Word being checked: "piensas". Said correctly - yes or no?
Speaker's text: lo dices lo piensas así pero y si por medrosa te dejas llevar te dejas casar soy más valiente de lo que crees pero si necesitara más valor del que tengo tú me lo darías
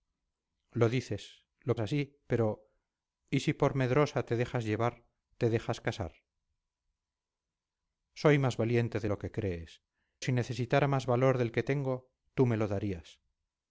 no